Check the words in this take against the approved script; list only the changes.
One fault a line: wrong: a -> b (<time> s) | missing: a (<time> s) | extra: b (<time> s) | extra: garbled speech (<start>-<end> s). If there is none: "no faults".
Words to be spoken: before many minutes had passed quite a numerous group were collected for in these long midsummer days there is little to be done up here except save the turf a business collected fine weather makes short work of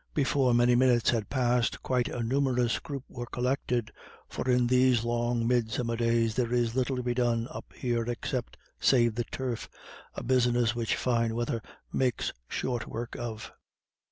wrong: collected -> which (10.7 s)